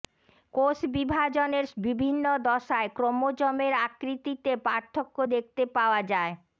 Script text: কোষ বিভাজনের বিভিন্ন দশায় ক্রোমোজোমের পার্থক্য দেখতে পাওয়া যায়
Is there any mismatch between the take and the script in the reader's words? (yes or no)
yes